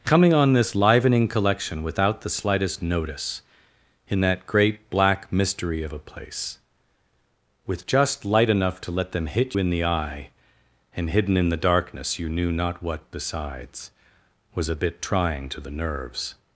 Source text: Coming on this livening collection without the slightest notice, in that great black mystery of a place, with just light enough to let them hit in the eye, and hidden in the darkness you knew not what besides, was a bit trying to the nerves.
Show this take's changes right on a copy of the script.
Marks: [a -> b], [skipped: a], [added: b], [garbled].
Coming on this livening collection without the slightest notice, in that great black mystery of a place, with just light enough to let them hit in the eye, and hidden in the darkness you knew not what besides, was a bit trying to the nerves.